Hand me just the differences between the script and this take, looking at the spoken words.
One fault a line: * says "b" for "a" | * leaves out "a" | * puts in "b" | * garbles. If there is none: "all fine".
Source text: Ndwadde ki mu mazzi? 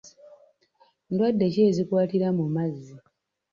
* puts in "ezikwatira"